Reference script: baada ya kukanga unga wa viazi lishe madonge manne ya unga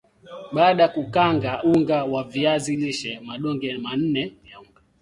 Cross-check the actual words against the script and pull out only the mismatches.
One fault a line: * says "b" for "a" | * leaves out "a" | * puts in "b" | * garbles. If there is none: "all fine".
all fine